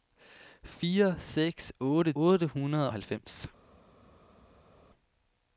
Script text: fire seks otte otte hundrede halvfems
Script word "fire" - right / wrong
right